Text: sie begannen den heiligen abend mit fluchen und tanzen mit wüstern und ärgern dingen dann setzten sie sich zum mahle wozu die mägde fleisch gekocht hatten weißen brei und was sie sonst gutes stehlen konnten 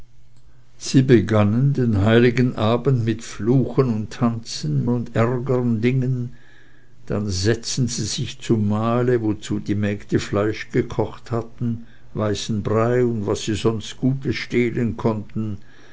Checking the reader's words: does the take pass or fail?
fail